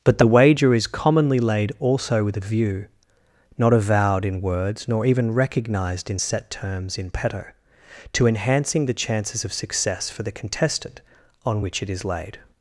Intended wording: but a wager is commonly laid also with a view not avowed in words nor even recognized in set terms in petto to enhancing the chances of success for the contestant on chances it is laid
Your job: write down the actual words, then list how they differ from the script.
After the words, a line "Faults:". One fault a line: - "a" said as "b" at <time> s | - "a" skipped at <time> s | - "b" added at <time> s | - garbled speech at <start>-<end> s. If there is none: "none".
but the wager is commonly laid also with a view not avowed in words nor even recognized in set terms in petto to enhancing the chances of success for the contestant on which it is laid
Faults:
- "a" said as "the" at 0.2 s
- "chances" said as "which" at 11.6 s